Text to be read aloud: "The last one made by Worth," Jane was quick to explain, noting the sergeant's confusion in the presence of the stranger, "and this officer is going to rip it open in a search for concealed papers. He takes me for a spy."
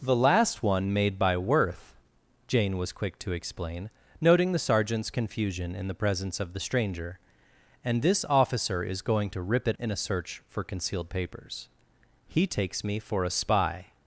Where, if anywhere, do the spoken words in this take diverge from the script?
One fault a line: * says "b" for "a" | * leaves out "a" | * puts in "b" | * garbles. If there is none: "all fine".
* leaves out "open"